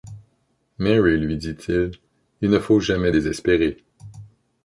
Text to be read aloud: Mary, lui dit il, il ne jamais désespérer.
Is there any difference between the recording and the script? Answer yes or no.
yes